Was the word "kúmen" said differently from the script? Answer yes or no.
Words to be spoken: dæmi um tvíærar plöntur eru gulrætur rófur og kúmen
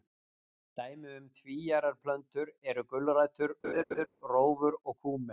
no